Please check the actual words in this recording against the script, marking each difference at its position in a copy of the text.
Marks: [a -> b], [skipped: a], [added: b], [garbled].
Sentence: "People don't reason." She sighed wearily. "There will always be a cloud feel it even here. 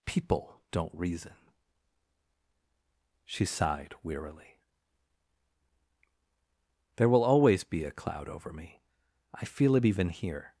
"People don't reason." She sighed wearily. "There will always be a cloud [added: over me I] feel it even here.